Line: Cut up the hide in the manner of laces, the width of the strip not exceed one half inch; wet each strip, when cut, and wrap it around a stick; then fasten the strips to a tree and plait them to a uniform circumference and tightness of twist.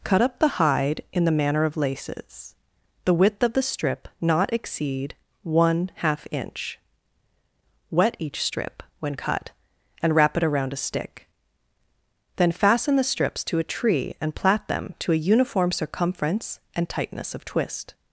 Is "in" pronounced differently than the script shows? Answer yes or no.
no